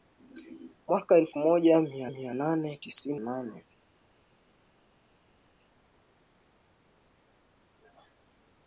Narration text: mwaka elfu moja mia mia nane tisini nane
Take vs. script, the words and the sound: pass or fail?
pass